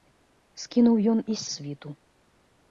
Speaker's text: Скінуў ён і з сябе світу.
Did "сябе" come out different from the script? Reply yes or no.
yes